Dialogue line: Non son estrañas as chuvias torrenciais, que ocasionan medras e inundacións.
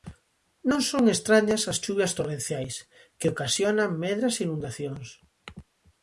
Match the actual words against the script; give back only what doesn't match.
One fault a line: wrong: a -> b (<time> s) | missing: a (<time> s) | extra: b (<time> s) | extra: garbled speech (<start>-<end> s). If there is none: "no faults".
no faults